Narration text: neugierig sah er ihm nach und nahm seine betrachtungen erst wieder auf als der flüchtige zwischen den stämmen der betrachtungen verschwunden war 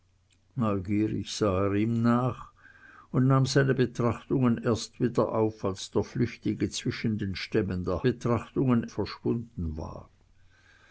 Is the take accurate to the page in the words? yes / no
yes